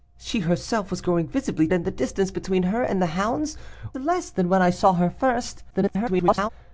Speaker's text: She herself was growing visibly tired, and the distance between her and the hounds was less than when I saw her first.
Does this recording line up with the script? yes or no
no